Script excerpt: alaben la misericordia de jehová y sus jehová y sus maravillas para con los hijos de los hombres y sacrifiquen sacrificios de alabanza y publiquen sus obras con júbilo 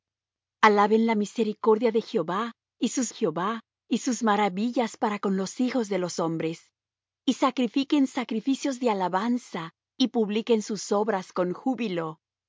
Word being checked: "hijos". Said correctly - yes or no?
yes